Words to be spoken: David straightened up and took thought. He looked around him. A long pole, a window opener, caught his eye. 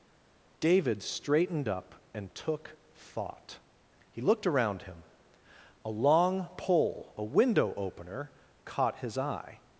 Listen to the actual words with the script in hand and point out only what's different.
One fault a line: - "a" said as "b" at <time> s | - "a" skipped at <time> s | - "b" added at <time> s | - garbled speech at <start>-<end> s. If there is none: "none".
none